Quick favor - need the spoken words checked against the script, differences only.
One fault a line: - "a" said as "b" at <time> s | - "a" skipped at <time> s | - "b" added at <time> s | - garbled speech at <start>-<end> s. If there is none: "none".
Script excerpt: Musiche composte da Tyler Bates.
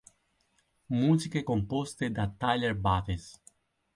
none